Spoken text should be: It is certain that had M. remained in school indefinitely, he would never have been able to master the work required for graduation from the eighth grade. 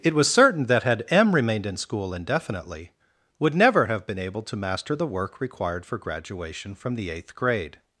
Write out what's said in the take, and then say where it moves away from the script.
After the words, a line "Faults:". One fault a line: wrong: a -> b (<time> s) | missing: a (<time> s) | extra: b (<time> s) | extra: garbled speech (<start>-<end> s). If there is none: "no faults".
It was certain that had M. remained in school indefinitely, would never have been able to master the work required for graduation from the eighth grade.
Faults:
wrong: is -> was (0.1 s)
missing: he (2.9 s)